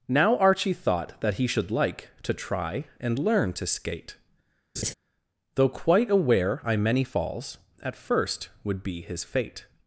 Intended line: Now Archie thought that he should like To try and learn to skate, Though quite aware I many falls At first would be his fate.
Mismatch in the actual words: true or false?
false